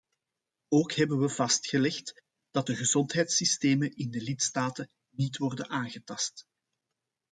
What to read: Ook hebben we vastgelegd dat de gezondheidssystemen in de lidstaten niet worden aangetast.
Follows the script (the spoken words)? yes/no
yes